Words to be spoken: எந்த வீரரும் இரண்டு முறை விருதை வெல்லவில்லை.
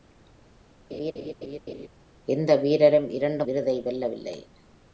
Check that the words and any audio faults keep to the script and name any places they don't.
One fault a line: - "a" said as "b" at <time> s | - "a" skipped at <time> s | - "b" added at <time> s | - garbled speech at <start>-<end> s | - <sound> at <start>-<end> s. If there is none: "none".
- laugh at 0.9-1.9 s
- "முறை" skipped at 3.4 s